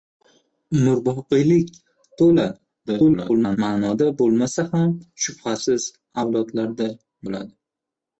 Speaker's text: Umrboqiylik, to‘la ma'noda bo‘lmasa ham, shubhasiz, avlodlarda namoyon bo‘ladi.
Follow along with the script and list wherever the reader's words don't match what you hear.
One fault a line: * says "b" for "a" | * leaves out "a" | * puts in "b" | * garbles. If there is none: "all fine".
* garbles
* leaves out "namoyon"